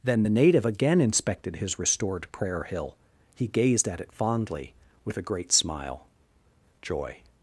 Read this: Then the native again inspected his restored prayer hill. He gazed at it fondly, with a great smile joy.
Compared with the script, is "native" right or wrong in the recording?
right